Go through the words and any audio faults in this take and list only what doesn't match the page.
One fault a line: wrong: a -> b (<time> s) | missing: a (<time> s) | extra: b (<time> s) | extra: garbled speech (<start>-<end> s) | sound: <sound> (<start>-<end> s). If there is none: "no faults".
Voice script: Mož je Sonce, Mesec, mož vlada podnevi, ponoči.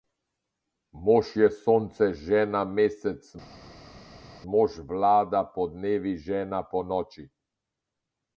extra: žena (2.2 s)
extra: žena (6.3 s)